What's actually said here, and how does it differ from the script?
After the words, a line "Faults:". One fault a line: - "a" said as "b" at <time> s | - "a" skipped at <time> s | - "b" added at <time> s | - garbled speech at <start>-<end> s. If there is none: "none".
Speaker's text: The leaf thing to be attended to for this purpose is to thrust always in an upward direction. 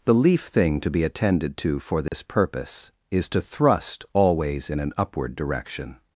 The leaf thing to be attended to for this purpose is to thrust always in an upward direction.
Faults:
none